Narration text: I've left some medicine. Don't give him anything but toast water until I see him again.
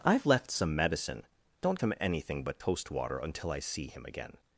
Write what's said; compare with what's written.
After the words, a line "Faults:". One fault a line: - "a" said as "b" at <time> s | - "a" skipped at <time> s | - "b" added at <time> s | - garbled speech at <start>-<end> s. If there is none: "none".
I've left some medicine. Don't him anything but toast water until I see him again.
Faults:
- "give" skipped at 1.8 s